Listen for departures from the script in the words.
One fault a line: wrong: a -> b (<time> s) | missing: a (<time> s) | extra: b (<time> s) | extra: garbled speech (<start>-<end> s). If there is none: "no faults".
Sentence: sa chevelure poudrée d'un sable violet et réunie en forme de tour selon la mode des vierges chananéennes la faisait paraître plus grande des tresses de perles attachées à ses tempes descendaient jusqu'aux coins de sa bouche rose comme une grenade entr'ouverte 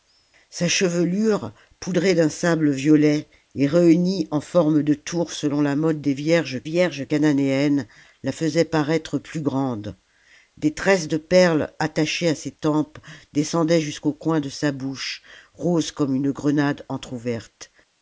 extra: vierges (6.6 s)